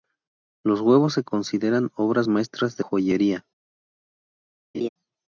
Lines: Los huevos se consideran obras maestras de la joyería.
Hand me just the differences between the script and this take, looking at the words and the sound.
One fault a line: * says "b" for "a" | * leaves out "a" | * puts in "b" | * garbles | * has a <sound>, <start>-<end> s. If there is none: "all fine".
* leaves out "la"
* has a laugh, 4.7-4.9 s